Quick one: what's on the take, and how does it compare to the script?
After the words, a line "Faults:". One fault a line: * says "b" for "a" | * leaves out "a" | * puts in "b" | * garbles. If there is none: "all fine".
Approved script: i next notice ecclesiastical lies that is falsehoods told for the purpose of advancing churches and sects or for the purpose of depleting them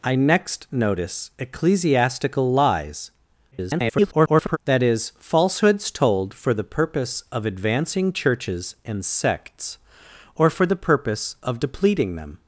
i next notice ecclesiastical lies [garbled] that is falsehoods told for the purpose of advancing churches and sects or for the purpose of depleting them
Faults:
* garbles